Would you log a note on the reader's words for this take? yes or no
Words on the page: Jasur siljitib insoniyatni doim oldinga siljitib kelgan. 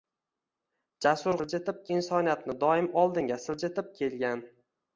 no